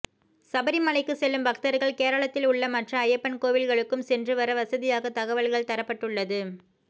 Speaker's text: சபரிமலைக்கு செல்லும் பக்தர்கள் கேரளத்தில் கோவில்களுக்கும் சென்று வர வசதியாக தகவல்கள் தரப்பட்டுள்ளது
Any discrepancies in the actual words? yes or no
yes